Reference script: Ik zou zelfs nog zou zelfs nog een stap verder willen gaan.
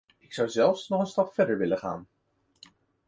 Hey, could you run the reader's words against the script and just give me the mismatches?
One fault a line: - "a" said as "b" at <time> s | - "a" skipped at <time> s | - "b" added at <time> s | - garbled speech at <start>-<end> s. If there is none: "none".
- "zou zelfs nog" skipped at 1.0 s